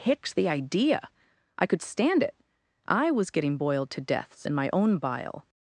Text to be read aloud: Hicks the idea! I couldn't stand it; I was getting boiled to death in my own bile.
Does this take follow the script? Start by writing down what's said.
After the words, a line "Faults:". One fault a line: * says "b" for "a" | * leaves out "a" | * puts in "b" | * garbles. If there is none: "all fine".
Hicks the idea! I could stand it; I was getting boiled to deaths in my own bile.
Faults:
* says "could" for "couldn't"
* says "deaths" for "death"